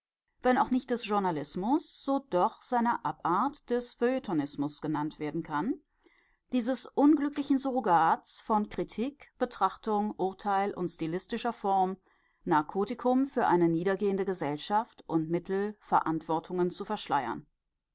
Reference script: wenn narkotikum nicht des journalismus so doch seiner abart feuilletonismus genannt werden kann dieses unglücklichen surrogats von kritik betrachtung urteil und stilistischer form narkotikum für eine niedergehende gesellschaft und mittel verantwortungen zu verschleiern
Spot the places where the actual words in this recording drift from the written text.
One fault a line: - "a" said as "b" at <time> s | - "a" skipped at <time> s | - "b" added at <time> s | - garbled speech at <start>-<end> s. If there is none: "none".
- "narkotikum" said as "auch" at 0.6 s
- "des" added at 3.7 s